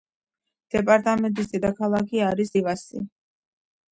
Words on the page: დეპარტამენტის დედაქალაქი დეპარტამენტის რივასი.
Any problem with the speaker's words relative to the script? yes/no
yes